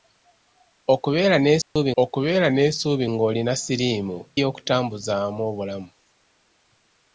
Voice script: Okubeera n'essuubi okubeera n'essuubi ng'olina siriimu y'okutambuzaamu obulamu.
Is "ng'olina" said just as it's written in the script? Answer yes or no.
yes